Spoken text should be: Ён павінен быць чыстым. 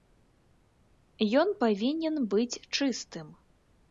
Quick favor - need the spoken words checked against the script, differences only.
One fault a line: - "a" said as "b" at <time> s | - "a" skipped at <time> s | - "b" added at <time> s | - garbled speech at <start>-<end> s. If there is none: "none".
none